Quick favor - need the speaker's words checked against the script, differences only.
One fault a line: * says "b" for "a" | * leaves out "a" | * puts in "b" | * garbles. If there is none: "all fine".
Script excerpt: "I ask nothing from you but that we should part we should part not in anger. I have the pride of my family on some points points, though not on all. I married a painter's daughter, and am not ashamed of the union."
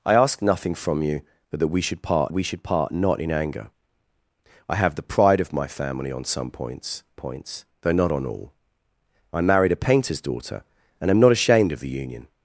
all fine